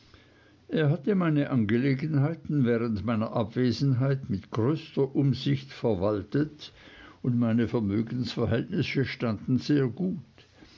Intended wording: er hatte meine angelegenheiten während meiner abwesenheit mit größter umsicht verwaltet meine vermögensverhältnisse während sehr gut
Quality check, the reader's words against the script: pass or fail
fail